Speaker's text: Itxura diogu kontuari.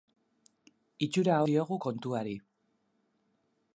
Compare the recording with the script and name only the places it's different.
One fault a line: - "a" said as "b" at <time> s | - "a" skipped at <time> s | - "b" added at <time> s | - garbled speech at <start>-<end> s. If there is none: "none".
none